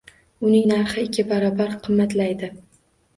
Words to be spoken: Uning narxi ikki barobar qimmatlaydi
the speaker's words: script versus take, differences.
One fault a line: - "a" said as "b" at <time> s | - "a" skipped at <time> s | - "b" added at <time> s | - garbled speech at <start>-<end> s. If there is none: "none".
none